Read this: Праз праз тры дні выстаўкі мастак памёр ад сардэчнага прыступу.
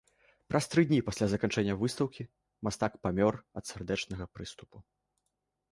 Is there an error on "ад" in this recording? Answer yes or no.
no